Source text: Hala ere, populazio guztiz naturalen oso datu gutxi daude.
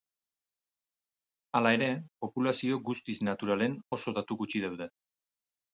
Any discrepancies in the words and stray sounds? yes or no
no